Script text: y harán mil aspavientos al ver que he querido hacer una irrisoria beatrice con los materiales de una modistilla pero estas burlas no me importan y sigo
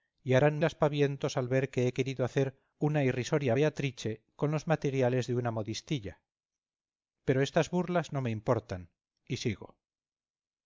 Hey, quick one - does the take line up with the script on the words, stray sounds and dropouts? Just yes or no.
no